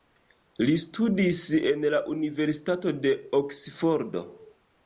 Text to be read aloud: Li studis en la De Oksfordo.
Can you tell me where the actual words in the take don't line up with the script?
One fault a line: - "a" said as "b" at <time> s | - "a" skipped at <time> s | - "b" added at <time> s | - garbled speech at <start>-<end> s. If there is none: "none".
- "Universitato" added at 2.1 s